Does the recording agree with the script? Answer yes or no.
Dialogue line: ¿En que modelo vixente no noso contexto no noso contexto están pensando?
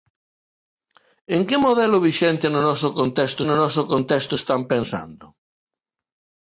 yes